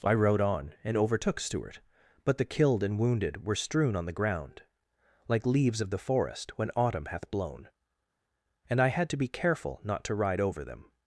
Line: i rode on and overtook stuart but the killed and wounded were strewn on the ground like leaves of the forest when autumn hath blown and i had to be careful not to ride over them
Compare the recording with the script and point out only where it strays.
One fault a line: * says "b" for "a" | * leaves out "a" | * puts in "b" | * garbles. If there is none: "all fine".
all fine